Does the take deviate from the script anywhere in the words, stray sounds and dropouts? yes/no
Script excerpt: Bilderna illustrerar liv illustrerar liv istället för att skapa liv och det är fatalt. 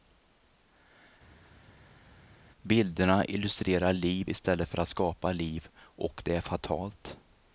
yes